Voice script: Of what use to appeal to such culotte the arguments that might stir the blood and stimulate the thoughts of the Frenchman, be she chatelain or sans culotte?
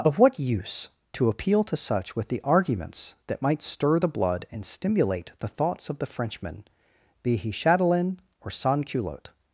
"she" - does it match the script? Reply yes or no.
no